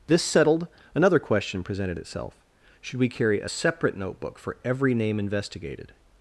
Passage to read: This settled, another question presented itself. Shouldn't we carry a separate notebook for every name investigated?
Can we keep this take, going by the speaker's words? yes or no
no